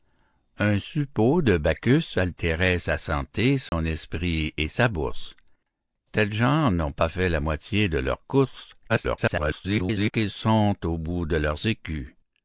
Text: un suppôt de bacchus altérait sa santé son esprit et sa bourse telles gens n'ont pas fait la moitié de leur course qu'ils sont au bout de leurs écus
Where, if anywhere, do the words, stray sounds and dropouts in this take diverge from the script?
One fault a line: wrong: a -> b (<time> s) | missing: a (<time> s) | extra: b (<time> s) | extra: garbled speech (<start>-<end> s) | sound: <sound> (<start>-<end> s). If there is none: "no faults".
sound: dropout (3.7-3.7 s)
extra: garbled speech (8.9-10.1 s)